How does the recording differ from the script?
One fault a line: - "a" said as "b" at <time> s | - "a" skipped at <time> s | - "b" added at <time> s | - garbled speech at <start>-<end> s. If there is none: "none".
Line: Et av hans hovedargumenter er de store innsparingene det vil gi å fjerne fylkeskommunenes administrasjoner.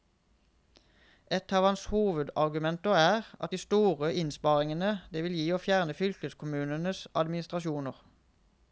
none